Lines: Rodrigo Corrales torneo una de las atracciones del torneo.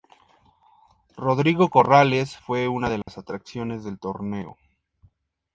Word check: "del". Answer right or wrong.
right